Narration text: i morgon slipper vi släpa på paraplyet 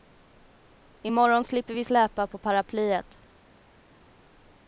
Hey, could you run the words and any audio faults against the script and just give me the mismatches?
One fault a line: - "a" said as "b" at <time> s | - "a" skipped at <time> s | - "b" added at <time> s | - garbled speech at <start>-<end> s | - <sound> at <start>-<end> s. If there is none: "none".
none